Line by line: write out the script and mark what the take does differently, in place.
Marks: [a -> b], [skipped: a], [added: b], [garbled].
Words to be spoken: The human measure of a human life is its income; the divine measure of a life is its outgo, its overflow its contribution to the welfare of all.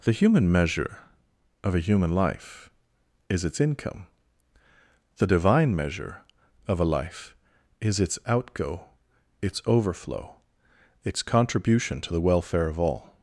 The human measure of a human life is its income; the divine measure of a life is its outgo, its overflow its contribution to the welfare of all.